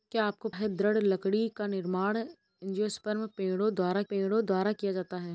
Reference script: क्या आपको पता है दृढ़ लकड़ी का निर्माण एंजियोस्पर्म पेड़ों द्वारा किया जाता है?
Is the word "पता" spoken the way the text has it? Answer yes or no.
no